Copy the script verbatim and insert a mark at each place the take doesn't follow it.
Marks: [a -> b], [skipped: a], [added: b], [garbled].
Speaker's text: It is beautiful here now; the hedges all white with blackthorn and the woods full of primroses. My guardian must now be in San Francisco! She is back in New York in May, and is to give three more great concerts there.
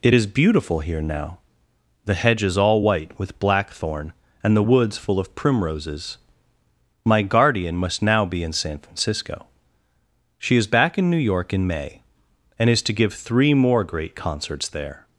It is beautiful here now; the hedges all white with blackthorn and the woods full of primroses. My guardian must now be in San Francisco! She is back in New York in May, and is to give three more great concerts there.